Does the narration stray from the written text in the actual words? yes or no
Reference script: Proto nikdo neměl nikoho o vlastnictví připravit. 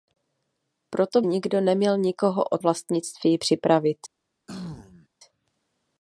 no